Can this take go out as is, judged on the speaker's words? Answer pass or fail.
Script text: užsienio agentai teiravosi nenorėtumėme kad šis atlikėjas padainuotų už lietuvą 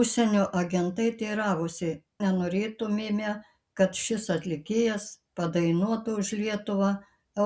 pass